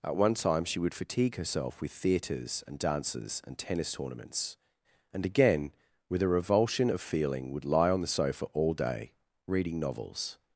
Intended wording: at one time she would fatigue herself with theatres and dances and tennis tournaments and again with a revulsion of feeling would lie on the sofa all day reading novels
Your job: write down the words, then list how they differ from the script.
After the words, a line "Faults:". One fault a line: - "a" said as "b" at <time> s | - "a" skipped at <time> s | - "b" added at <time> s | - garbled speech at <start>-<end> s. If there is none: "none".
at one time she would fatigue herself with theatres and dances and tennis tournaments and again with a revulsion of feeling would lie on the sofa all day reading novels
Faults:
none